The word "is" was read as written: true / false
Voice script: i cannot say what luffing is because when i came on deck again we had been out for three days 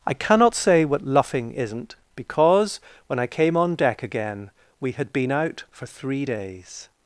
false